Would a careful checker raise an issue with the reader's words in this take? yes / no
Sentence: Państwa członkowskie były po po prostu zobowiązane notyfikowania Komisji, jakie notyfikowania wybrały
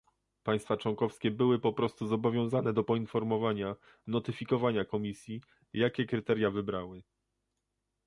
yes